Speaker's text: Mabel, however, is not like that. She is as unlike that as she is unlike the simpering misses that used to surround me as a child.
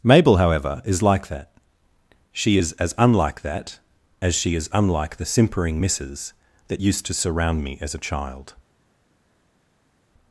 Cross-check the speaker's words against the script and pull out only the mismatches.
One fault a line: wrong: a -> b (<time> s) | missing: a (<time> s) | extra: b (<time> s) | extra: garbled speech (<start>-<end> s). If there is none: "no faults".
missing: not (1.0 s)